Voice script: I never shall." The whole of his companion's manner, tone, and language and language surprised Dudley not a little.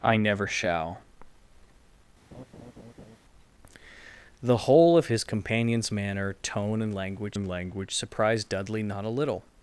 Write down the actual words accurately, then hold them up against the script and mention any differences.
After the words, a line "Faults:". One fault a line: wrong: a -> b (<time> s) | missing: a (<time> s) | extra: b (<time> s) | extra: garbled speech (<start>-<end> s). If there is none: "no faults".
I never shall." The whole of his companion's manner, tone, and language and language surprised Dudley not a little.
Faults:
no faults